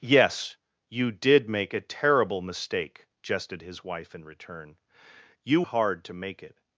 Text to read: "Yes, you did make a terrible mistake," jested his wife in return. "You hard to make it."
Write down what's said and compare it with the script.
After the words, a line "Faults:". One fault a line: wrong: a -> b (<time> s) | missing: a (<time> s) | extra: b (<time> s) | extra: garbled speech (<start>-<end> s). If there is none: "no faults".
"Yes, you did make a terrible mistake," jested his wife in return. "You hard to make it."
Faults:
no faults